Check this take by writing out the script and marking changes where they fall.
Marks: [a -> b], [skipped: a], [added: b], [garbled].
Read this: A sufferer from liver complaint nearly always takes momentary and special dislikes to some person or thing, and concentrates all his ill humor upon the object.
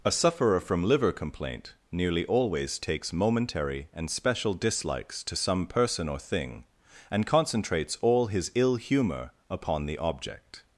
A sufferer from liver complaint nearly always takes momentary and special dislikes to some person or thing, and concentrates all his ill humor upon the object.